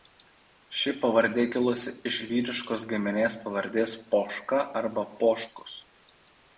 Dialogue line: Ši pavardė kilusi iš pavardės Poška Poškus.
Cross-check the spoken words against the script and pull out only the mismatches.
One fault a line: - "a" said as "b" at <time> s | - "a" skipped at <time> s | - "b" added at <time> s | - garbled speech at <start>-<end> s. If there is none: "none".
- "vyriškos giminės" added at 2.3 s
- "arba" added at 4.8 s